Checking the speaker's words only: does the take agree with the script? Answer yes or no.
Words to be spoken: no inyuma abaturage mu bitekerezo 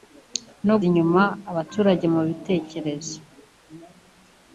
yes